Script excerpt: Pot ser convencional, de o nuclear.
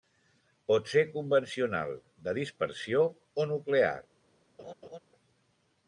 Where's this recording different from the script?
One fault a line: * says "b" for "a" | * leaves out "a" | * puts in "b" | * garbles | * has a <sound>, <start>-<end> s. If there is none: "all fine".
* puts in "dispersió"
* has a laugh, 4.6-5.0 s